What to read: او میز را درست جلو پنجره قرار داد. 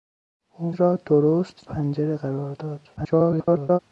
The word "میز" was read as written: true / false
false